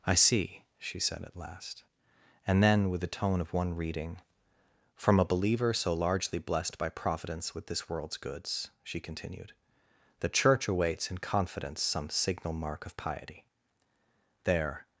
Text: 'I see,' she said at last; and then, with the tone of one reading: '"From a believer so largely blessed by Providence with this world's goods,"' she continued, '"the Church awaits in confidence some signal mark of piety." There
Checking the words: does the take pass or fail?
pass